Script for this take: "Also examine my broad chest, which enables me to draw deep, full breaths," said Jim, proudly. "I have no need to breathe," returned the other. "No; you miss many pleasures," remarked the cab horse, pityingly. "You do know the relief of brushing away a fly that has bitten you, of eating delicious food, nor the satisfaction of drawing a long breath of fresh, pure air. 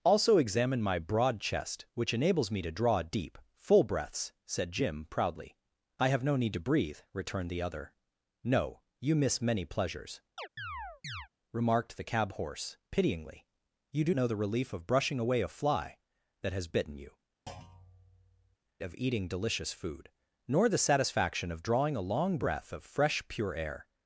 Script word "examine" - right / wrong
right